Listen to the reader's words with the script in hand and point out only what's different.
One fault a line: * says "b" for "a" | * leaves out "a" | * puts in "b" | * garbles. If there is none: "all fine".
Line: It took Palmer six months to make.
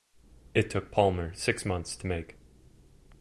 all fine